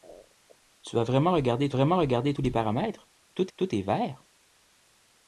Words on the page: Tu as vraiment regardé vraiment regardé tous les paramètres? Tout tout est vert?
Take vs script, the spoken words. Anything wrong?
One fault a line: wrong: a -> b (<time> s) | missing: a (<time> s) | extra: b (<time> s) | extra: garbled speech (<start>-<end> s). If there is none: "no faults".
no faults